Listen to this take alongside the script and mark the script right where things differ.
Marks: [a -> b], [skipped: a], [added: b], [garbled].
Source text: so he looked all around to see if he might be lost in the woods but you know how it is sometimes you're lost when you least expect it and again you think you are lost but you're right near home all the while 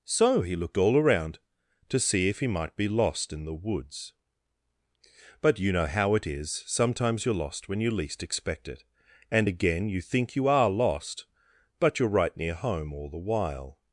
so he looked all around to see if he might be lost in the woods but you know how it is sometimes you're lost when you least expect it and again you think you are lost but you're right near home all the while